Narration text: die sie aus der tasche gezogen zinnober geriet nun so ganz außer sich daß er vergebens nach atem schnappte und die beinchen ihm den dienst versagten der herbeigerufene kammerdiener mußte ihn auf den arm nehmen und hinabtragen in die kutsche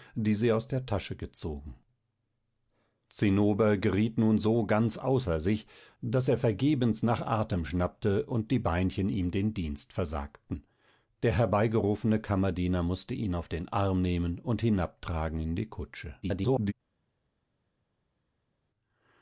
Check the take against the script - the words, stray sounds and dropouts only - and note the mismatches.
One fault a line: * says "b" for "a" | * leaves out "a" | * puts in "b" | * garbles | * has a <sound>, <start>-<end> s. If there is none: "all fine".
* garbles